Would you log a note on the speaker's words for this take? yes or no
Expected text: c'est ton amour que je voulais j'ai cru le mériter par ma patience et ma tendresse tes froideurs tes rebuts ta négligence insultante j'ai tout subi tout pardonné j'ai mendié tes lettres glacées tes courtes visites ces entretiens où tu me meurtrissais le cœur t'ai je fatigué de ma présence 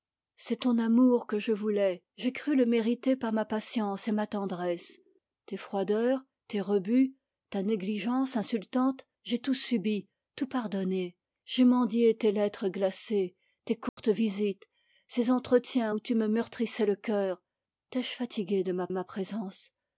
yes